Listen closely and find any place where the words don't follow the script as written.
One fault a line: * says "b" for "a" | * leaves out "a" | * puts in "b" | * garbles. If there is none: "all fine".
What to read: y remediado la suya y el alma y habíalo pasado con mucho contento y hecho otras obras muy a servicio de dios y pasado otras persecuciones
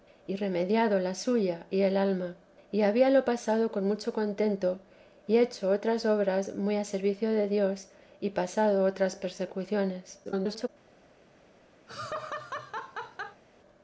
* garbles